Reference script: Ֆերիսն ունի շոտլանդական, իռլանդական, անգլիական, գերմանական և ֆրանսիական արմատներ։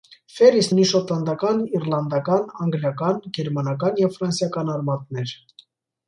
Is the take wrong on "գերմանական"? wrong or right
right